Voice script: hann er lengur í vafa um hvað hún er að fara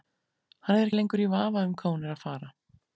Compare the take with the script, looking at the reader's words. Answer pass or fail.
pass